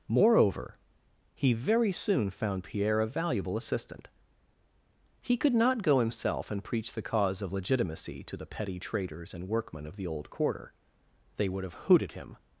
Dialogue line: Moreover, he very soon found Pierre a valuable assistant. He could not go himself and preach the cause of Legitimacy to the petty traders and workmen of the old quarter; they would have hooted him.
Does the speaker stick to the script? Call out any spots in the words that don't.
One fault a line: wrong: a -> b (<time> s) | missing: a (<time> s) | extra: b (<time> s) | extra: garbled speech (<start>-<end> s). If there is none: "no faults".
no faults